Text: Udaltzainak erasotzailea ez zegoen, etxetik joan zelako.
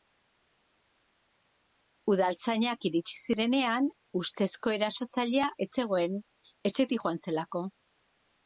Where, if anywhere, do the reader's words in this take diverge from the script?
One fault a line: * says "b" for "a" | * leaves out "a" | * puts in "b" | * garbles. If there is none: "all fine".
* puts in "iritsi zirenean ustezko"